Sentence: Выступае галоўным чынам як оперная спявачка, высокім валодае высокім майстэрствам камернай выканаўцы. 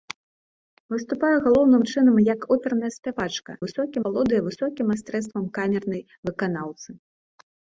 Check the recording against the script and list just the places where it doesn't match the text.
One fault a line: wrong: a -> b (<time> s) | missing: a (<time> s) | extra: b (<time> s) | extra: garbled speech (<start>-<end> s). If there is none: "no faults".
no faults